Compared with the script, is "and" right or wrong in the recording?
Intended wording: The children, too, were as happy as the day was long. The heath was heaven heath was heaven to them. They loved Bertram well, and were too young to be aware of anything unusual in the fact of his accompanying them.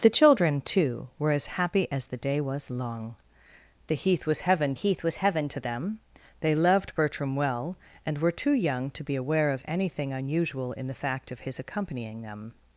right